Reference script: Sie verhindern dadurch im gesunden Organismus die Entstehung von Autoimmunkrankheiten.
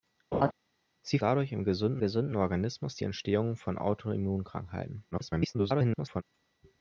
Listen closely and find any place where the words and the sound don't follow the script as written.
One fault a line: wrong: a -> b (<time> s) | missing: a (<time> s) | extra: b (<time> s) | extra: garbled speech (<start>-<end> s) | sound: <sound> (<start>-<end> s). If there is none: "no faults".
sound: laugh (0.3-0.5 s)
missing: verhindern (1.2 s)
extra: gesunden (2.0 s)
extra: garbled speech (5.1-6.2 s)